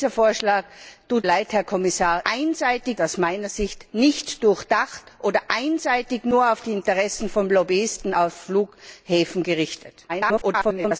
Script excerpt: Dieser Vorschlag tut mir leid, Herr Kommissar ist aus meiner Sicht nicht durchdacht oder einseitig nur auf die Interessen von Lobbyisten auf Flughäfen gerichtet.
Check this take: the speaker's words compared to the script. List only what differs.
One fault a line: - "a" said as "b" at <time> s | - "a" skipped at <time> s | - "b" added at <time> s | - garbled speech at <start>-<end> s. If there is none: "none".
- "mir" skipped at 1.3 s
- "ist" said as "einseitig" at 2.3 s
- garbled speech at 10.1-11.0 s